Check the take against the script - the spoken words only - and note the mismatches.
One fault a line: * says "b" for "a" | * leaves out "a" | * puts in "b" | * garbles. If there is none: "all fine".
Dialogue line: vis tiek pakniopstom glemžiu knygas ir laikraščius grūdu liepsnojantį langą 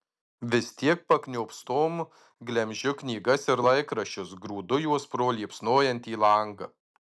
* puts in "juos pro"